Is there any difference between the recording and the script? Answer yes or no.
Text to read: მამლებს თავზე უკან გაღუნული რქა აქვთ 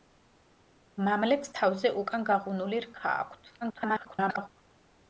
yes